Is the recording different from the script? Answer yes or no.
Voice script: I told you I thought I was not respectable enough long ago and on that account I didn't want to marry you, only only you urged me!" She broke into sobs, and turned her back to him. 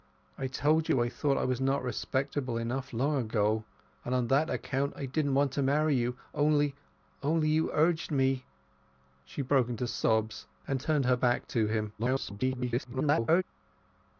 yes